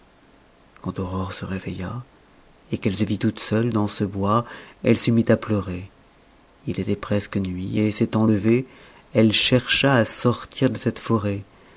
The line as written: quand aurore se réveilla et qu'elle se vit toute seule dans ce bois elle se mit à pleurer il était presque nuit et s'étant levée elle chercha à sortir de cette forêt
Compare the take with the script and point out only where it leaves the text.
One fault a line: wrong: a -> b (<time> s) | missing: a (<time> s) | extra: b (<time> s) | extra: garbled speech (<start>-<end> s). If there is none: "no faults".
no faults